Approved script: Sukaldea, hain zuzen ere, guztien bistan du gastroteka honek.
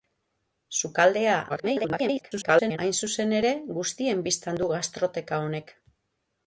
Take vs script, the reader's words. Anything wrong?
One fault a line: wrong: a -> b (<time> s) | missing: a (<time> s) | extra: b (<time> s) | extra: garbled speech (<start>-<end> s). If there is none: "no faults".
extra: garbled speech (1.5-2.8 s)